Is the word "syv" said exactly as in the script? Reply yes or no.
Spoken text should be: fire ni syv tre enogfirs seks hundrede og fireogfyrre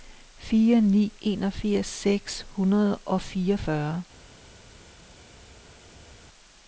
no